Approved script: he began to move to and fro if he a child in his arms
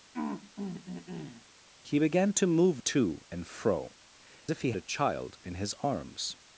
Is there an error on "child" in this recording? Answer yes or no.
no